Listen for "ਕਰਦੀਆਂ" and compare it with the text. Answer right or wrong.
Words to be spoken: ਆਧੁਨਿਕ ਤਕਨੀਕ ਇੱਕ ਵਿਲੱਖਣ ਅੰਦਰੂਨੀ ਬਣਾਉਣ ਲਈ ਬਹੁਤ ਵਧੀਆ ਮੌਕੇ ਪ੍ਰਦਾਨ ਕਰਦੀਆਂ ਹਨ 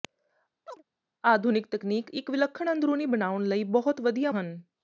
wrong